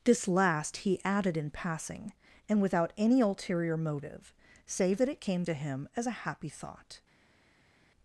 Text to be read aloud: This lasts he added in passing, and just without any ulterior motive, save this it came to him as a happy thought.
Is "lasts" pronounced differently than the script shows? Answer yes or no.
yes